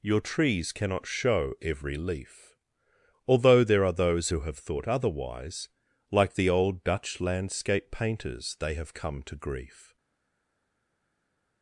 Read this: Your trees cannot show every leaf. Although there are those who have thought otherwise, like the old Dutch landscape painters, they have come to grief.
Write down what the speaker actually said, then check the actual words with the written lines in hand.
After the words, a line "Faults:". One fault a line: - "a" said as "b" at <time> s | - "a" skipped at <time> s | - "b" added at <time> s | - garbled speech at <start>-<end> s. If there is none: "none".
Your trees cannot show every leaf. Although there are those who have thought otherwise, like the old Dutch landscape painters, they have come to grief.
Faults:
none